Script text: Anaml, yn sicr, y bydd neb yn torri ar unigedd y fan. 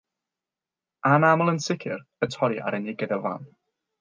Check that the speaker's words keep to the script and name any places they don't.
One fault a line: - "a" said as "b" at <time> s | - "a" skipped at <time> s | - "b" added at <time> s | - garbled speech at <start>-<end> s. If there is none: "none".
- "bydd neb" skipped at 2.3 s